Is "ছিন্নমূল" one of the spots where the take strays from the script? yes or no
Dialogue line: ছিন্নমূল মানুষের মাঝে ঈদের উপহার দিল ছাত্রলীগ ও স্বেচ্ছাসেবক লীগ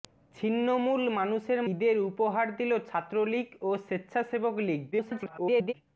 no